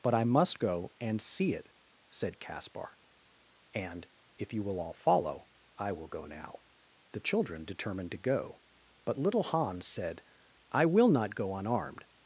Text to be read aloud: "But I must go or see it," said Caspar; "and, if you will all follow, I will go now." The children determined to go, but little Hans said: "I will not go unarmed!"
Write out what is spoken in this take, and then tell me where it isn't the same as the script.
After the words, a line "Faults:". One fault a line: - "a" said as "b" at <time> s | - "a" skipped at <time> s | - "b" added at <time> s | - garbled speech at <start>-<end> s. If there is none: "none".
"But I must go and see it," said Caspar; "and, if you will all follow, I will go now." The children determined to go, but little Hans said: "I will not go unarmed!"
Faults:
- "or" said as "and" at 1.0 s